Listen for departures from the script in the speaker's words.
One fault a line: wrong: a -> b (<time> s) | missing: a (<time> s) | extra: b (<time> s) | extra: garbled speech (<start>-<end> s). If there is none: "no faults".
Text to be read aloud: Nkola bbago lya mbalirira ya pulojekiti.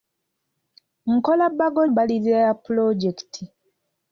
missing: lya (1.8 s)